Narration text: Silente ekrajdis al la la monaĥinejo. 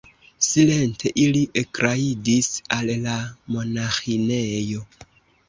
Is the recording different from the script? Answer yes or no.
yes